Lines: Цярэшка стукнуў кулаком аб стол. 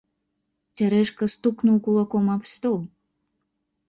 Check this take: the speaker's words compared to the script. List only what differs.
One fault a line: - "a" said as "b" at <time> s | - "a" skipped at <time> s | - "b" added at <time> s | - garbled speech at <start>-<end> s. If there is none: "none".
none